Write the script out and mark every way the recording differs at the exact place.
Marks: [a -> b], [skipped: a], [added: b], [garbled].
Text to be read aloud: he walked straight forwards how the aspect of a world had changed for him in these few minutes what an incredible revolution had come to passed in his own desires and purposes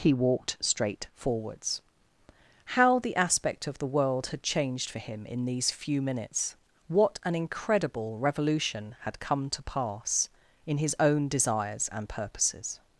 he walked straight forwards how the aspect of [a -> the] world had changed for him in these few minutes what an incredible revolution had come to [passed -> pass] in his own desires and purposes